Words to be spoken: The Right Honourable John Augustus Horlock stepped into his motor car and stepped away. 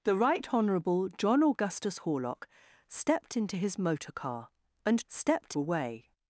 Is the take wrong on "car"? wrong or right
right